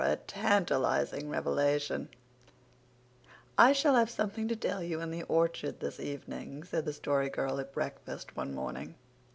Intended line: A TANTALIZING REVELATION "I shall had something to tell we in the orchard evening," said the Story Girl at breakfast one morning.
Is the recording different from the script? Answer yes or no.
yes